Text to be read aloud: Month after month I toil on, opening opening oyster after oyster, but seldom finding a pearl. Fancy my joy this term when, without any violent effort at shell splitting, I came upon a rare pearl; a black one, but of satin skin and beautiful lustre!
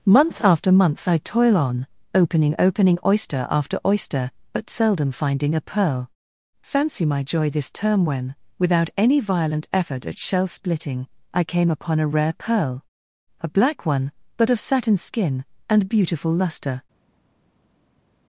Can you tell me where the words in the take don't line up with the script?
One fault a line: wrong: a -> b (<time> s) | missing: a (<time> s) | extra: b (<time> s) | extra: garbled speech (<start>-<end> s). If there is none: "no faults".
no faults